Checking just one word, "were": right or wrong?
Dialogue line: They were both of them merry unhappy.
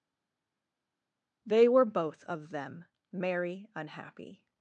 right